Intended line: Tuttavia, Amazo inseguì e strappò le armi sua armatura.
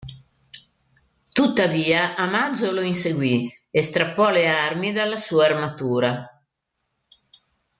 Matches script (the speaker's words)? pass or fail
fail